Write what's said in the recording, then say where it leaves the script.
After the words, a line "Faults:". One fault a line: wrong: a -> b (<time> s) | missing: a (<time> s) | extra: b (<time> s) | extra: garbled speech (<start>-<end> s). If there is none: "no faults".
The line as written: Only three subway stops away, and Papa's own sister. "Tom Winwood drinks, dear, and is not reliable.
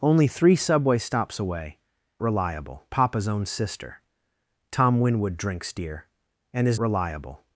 Only three subway stops away, reliable Papa's own sister. "Tom Winwood drinks, dear, and is reliable.
Faults:
wrong: and -> reliable (2.2 s)
missing: not (6.8 s)